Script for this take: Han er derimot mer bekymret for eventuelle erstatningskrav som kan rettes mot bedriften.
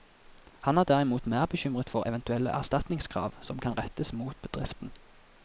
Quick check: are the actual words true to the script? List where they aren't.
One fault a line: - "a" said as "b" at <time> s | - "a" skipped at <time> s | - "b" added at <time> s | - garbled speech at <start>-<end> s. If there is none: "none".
none